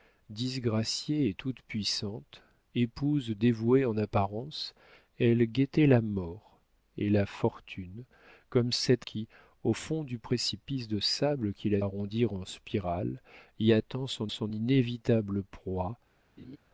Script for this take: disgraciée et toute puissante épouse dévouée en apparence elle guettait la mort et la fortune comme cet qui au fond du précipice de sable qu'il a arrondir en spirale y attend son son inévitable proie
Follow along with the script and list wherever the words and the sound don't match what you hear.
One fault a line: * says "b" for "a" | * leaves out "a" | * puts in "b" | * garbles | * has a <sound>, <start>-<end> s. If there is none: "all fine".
* has a laugh, 16.4-16.6 s